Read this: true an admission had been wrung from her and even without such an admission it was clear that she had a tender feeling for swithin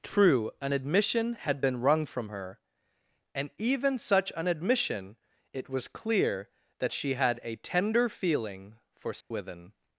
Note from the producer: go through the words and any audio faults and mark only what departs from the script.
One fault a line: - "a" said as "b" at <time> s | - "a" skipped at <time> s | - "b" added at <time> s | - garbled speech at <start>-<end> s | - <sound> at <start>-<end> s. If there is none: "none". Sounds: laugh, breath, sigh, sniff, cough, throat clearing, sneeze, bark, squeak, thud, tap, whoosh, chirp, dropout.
- "without" skipped at 4.0 s
- dropout at 9.2-9.3 s